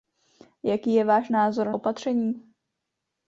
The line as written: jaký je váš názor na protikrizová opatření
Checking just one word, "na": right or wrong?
wrong